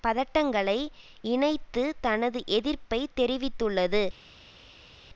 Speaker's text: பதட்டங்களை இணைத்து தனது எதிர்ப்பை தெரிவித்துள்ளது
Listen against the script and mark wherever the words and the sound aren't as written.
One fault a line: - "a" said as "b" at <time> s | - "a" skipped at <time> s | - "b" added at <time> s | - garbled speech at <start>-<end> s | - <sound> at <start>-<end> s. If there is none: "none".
none